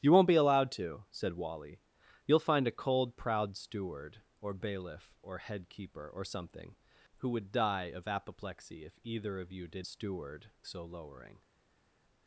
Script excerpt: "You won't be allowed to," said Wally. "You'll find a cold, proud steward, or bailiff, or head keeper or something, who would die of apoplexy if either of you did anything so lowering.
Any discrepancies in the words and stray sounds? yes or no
yes